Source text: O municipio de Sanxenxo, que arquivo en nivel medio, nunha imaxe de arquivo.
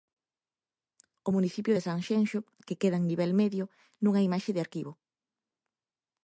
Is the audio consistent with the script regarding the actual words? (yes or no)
no